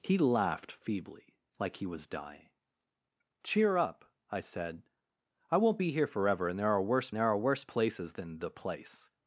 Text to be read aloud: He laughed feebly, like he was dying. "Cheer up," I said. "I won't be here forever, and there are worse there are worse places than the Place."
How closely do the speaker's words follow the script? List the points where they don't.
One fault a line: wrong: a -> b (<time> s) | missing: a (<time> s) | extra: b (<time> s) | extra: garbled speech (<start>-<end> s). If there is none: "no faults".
no faults